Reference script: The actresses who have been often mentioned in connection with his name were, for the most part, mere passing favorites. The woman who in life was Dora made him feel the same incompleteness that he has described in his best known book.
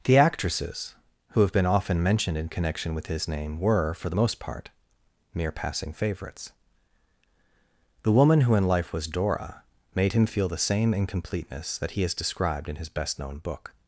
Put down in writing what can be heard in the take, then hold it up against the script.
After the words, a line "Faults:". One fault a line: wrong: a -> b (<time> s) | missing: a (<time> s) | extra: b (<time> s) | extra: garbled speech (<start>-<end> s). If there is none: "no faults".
The actresses who have been often mentioned in connection with his name were, for the most part, mere passing favorites. The woman who in life was Dora made him feel the same incompleteness that he has described in his best known book.
Faults:
no faults